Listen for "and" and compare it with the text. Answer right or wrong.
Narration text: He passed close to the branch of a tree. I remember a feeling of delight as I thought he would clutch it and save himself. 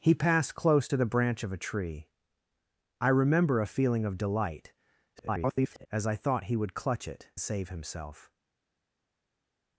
wrong